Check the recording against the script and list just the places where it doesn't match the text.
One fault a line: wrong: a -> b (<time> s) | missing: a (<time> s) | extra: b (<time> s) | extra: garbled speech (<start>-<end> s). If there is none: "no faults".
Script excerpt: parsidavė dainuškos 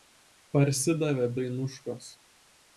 no faults